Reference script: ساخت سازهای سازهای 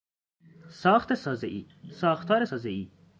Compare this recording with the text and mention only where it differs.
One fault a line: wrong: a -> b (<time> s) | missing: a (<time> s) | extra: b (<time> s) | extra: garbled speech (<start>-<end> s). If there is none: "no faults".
extra: ساختار (1.9 s)